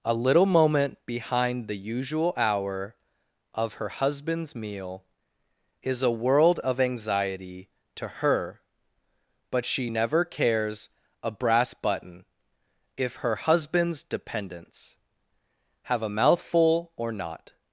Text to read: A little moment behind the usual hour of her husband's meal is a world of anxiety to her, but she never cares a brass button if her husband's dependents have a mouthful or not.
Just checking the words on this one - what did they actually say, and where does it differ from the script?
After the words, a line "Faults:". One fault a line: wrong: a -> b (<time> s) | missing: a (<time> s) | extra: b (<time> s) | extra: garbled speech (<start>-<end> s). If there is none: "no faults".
A little moment behind the usual hour of her husband's meal is a world of anxiety to her, but she never cares a brass button if her husband's dependents have a mouthful or not.
Faults:
no faults